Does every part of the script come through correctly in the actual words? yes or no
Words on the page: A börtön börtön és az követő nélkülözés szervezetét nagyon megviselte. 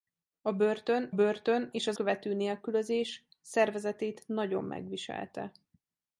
yes